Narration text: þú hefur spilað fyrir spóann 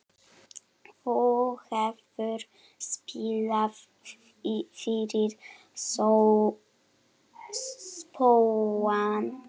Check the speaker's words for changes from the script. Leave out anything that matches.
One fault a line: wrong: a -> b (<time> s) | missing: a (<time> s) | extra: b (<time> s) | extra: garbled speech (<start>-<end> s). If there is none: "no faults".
no faults